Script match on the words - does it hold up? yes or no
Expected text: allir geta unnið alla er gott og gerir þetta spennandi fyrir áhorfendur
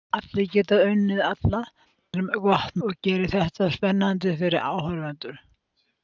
yes